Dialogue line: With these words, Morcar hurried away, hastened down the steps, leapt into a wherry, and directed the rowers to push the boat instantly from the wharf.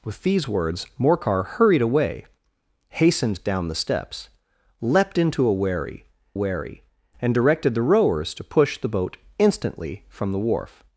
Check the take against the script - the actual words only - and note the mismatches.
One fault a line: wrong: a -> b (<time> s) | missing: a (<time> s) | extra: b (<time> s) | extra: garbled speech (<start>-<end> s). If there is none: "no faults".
extra: wherry (6.3 s)